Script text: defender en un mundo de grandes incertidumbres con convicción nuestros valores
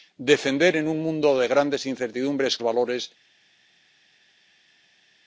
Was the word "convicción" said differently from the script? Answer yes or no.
yes